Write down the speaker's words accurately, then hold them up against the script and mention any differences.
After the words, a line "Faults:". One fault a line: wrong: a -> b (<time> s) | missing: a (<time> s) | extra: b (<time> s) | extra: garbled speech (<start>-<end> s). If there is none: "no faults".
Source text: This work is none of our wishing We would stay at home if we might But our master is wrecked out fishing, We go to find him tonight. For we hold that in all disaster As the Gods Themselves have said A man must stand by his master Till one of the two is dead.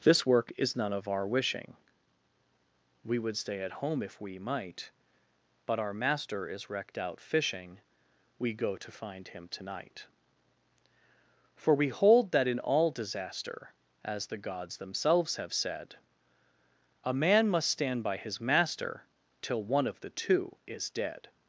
This work is none of our wishing We would stay at home if we might But our master is wrecked out fishing, We go to find him tonight. For we hold that in all disaster As the Gods Themselves have said A man must stand by his master Till one of the two is dead.
Faults:
no faults